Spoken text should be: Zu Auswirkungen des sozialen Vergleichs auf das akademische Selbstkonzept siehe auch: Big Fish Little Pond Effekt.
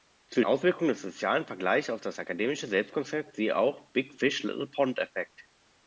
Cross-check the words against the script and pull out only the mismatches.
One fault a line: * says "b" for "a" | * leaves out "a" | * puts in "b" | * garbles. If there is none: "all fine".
all fine